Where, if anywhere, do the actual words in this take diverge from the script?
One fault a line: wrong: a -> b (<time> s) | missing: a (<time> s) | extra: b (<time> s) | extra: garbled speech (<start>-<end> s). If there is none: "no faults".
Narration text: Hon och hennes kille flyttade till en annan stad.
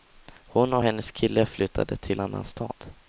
missing: en (2.2 s)